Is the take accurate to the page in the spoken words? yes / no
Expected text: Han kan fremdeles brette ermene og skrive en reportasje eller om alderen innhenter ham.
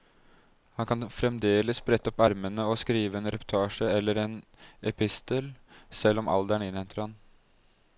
no